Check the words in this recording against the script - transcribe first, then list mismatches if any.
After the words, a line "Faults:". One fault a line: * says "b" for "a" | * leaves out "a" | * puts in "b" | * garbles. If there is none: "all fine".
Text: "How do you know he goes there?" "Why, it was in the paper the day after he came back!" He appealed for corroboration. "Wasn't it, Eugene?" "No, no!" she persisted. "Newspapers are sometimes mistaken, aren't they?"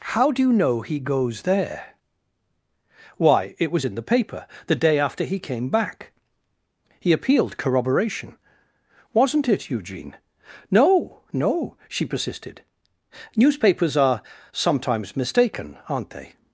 "How do you know he goes there?" "Why, it was in the paper the day after he came back!" He appealed corroboration. "Wasn't it, Eugene?" "No, no!" she persisted. "Newspapers are sometimes mistaken, aren't they?"
Faults:
* leaves out "for"